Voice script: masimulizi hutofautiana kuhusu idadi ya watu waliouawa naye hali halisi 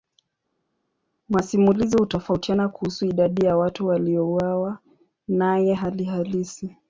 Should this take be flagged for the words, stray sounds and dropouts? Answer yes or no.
no